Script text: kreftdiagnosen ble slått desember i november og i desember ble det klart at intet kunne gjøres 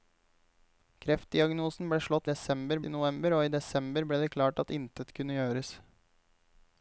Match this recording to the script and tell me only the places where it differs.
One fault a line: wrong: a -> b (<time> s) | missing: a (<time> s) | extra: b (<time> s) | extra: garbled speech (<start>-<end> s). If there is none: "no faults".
no faults